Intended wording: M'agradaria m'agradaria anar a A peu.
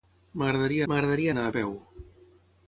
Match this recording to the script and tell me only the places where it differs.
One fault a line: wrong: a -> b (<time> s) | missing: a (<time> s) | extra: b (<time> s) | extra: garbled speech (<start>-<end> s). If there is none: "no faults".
no faults